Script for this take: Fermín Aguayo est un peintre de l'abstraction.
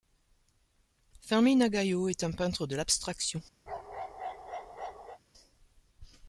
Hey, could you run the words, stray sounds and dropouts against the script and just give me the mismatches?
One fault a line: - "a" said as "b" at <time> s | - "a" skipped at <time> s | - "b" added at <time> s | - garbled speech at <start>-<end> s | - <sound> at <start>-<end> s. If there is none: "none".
- bark at 3.7-5.2 s